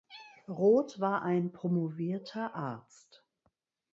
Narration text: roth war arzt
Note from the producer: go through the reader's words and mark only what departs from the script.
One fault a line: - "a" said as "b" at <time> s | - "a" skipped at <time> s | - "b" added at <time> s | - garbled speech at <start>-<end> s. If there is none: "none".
- "ein promovierter" added at 1.2 s